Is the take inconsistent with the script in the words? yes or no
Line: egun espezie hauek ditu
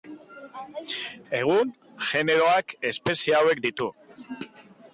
yes